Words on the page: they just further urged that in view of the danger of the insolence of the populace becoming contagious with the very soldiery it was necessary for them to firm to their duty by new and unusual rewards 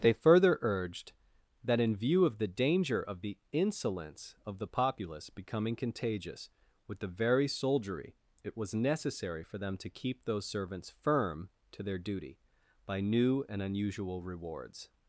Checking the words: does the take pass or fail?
fail